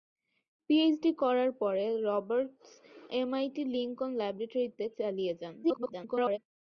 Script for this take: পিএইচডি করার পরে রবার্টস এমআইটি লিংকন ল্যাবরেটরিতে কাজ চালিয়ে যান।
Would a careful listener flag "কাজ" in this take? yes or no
yes